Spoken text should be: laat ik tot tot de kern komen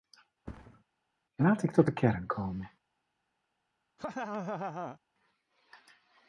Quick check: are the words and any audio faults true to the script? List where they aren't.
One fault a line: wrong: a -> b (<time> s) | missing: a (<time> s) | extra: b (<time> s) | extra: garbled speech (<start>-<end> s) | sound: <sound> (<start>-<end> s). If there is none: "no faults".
sound: thud (0.5-0.8 s)
missing: tot (1.9 s)
sound: laugh (4.0-5.0 s)